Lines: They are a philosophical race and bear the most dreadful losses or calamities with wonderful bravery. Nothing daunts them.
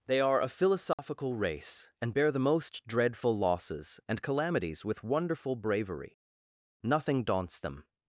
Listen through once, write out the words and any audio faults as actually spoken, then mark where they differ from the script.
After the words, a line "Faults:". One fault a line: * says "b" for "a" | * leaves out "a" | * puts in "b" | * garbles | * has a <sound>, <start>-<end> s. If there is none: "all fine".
They are a philosophical race and bear the most dreadful losses and calamities with wonderful bravery. Nothing daunts them.
Faults:
* has a dropout, 0.9-1.0 s
* says "and" for "or"